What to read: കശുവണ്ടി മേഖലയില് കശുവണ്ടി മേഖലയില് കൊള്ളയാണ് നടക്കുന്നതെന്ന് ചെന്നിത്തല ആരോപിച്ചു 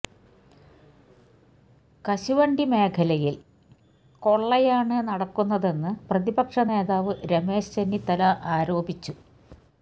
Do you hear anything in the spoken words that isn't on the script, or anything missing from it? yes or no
yes